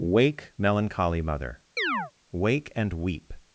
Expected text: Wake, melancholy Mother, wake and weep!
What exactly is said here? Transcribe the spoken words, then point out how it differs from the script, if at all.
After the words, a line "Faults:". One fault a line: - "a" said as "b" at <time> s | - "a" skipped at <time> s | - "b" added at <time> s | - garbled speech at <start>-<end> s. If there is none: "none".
Wake, melancholy Mother, wake and weep!
Faults:
none